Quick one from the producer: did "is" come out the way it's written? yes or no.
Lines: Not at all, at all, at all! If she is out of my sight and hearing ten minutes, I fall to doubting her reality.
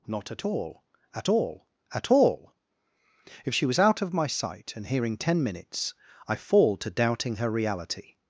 no